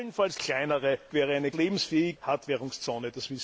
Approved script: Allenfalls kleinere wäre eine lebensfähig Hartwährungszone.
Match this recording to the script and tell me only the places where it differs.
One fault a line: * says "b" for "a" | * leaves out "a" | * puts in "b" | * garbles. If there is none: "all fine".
all fine